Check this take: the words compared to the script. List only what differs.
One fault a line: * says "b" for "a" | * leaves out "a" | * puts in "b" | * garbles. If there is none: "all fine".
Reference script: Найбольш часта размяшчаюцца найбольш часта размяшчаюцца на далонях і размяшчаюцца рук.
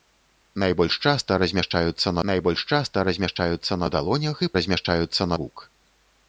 all fine